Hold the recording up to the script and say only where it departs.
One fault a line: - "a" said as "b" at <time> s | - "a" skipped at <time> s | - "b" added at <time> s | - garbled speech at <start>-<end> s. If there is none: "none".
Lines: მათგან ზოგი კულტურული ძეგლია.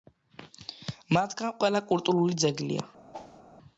- "ზოგი" said as "ყველა" at 1.6 s